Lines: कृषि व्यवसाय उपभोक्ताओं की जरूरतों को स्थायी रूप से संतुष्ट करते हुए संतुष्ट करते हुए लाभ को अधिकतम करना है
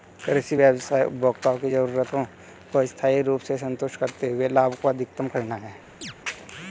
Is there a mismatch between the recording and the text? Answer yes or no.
yes